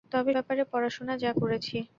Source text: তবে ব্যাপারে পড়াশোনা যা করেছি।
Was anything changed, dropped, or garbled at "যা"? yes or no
no